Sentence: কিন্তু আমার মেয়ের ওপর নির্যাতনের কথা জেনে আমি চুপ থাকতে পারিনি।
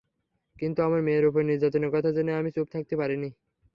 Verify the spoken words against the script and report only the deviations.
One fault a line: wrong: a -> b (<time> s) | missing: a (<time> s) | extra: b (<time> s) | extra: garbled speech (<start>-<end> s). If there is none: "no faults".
no faults